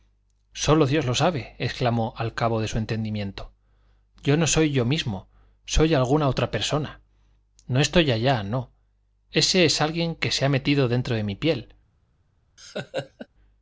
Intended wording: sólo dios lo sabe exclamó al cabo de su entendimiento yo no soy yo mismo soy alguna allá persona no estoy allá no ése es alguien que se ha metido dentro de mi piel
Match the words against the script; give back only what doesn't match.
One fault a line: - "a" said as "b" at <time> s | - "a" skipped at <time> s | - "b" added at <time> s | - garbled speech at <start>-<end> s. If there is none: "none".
- "allá" said as "otra" at 6.3 s